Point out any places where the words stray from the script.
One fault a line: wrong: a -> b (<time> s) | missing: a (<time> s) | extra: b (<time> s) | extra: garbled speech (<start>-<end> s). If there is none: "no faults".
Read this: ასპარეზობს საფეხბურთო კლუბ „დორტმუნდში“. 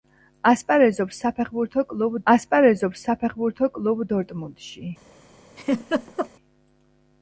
extra: ასპარეზობს საფეხბურთო კლუბ (2.3 s)